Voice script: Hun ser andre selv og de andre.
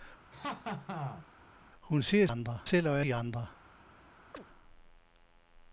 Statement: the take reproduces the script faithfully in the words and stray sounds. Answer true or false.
false